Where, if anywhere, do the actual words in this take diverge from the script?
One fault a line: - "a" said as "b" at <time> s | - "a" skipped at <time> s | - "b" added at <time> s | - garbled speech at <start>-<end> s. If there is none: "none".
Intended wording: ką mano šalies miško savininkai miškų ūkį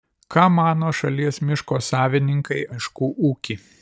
none